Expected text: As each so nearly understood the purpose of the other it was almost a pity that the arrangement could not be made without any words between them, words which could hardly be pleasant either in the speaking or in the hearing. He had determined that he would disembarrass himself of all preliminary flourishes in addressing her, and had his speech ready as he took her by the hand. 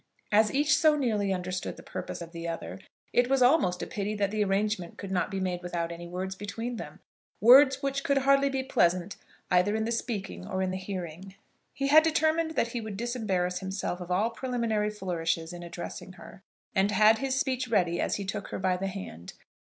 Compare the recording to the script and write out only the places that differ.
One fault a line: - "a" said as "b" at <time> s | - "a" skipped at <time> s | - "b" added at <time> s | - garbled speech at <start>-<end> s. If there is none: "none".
none